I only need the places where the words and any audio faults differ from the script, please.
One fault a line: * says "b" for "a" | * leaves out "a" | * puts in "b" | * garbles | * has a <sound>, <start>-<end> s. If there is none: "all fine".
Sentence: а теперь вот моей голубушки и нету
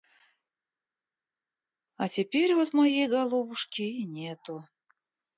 all fine